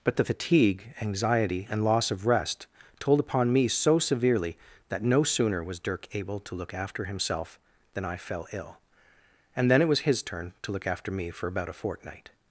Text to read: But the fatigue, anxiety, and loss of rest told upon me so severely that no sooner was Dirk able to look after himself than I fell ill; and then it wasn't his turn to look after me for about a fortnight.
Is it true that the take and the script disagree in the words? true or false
true